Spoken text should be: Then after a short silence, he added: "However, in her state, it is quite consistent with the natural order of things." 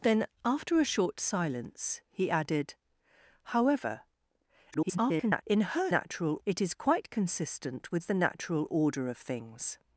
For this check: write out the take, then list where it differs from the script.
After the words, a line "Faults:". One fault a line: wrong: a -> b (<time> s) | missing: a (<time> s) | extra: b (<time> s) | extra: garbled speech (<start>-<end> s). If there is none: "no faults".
Then after a short silence, he added: "However, [garbled] in her natural, it is quite consistent with the natural order of things."
Faults:
extra: garbled speech (4.7-5.4 s)
wrong: state -> natural (5.9 s)